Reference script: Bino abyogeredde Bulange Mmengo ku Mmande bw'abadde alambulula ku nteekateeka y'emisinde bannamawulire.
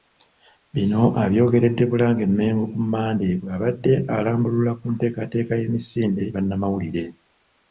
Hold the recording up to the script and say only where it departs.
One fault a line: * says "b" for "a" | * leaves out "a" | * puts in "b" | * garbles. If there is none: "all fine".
all fine